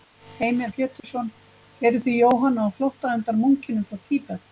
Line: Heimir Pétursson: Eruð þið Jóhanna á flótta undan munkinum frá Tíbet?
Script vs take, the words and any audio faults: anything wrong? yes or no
yes